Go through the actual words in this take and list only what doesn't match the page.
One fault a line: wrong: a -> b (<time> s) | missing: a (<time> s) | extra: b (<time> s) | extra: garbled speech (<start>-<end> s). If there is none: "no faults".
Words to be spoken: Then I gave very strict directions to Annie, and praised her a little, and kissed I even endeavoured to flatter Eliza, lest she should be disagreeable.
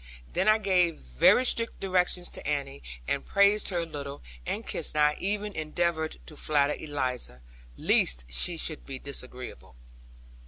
no faults